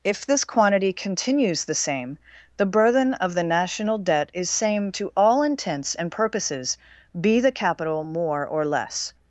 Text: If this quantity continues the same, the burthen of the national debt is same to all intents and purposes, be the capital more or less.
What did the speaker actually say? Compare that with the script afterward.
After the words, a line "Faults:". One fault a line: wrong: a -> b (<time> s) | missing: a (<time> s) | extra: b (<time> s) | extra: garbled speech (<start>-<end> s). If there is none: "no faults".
If this quantity continues the same, the burthen of the national debt is same to all intents and purposes, be the capital more or less.
Faults:
no faults